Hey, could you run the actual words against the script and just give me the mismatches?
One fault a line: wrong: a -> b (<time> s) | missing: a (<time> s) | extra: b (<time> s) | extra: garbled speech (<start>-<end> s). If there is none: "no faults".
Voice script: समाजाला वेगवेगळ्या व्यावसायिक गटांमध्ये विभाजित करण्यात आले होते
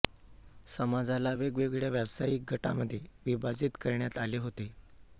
no faults